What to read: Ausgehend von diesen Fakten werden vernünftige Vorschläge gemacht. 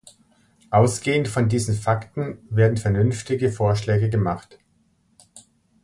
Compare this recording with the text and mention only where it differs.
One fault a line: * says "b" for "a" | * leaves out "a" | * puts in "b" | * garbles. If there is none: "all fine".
all fine